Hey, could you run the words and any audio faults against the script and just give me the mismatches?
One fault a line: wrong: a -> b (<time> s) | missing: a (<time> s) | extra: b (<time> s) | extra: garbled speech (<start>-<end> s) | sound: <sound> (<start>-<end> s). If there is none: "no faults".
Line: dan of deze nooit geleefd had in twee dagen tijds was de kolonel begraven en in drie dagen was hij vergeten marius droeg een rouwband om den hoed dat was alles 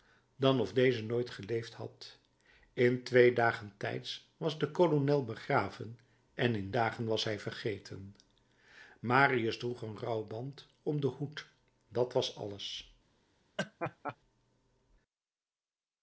missing: drie (6.7 s)
sound: laugh (13.6-14.2 s)